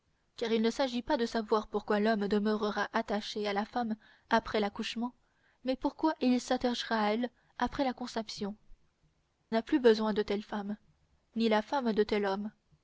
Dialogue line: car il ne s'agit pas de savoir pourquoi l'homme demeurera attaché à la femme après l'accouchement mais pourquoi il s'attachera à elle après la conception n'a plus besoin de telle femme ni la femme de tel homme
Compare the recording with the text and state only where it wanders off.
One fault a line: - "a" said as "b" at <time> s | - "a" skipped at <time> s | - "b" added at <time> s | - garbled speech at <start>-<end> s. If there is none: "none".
none